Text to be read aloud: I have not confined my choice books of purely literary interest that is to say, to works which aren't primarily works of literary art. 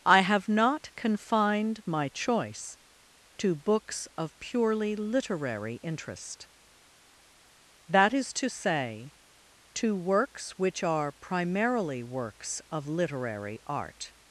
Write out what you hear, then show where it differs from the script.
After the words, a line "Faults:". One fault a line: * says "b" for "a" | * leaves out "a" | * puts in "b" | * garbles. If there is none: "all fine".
I have not confined my choice to books of purely literary interest that is to say, to works which are primarily works of literary art.
Faults:
* puts in "to"
* says "are" for "aren't"